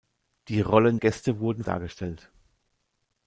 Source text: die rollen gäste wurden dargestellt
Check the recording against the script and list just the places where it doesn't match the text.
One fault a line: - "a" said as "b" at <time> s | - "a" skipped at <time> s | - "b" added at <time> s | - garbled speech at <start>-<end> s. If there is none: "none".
none